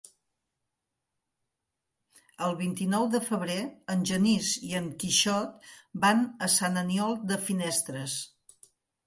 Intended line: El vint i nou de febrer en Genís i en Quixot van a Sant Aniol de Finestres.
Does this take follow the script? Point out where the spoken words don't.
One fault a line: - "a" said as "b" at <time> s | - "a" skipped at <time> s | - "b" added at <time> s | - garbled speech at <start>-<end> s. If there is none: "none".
none